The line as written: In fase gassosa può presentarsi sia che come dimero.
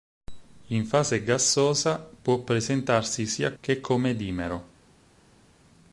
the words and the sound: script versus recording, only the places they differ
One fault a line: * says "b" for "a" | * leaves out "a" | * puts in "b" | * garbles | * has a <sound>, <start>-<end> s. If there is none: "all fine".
all fine